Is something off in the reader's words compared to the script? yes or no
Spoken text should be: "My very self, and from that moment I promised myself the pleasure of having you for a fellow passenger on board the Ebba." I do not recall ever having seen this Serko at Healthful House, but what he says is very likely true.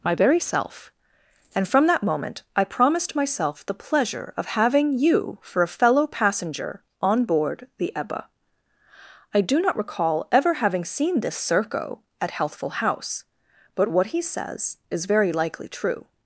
no